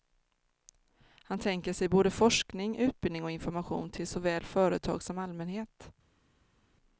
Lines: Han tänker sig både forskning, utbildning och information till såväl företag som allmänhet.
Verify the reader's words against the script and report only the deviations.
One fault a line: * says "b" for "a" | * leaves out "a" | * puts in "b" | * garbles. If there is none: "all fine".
all fine